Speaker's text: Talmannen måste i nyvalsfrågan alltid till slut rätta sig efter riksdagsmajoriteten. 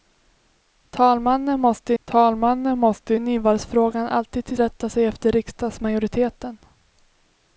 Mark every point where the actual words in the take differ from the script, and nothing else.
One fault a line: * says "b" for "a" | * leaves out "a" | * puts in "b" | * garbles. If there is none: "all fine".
* puts in "talmannen måste"
* leaves out "slut"